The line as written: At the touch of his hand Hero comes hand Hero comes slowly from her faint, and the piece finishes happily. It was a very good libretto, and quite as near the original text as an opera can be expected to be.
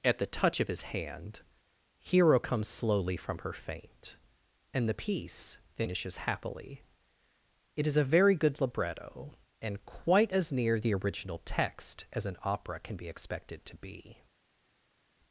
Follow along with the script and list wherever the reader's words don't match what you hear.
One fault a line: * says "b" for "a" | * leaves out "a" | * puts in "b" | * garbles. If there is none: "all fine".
* leaves out "hand Hero comes"
* says "is" for "was"